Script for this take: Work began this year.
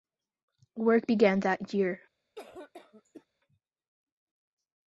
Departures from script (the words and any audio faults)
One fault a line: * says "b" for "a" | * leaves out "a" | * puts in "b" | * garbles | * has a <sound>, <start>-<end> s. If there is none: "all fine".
* says "that" for "this"
* has a cough, 2.4-3.3 s